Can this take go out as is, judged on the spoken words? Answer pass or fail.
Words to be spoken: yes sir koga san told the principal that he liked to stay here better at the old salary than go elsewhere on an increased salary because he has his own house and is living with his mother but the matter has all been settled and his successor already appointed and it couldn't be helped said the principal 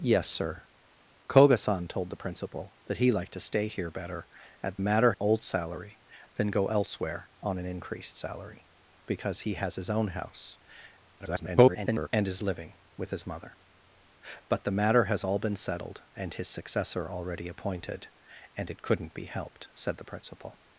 fail